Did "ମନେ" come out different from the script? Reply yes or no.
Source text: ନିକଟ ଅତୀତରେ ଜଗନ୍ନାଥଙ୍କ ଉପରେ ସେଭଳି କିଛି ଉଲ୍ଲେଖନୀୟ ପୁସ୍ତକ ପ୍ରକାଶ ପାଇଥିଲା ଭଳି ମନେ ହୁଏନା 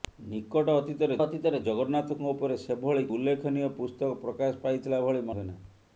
yes